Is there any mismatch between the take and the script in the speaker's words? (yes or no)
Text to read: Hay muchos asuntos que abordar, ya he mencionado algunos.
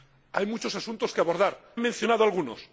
yes